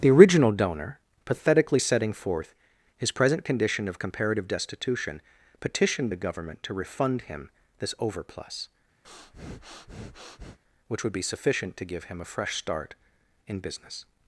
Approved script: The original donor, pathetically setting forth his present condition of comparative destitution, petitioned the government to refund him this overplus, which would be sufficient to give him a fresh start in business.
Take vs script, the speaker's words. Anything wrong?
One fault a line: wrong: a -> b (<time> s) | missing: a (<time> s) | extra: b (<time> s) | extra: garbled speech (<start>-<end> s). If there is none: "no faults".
no faults